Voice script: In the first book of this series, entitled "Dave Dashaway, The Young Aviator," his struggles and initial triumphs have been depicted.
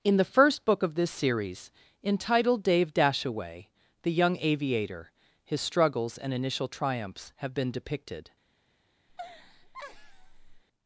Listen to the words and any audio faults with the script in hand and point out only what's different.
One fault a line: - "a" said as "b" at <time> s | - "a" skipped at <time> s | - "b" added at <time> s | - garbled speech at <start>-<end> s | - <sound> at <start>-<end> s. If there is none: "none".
- laugh at 9.1-10.6 s